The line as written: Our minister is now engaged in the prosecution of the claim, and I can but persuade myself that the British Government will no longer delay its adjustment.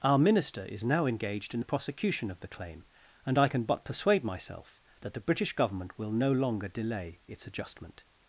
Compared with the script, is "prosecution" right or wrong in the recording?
right